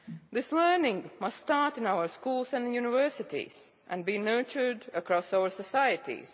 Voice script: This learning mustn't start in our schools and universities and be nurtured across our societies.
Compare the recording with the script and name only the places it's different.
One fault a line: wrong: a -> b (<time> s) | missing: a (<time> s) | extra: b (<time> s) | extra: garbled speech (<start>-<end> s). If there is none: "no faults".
wrong: mustn't -> must (1.2 s)